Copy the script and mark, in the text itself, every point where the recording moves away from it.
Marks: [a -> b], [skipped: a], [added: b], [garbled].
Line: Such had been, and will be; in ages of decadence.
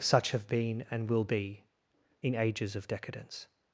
Such [had -> have] been, and will be; in ages of decadence.